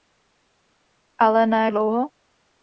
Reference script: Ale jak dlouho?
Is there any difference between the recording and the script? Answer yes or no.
yes